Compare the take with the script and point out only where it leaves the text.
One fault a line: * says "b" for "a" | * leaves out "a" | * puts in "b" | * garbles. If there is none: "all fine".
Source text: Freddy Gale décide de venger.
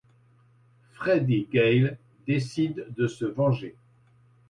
* puts in "se"